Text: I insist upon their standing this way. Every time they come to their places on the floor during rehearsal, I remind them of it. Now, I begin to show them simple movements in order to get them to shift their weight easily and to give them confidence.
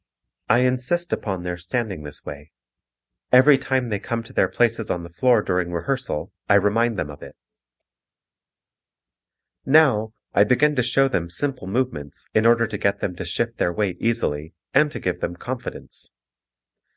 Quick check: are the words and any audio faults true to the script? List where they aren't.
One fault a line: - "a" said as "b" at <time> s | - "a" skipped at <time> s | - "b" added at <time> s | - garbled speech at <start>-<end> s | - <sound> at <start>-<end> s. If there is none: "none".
none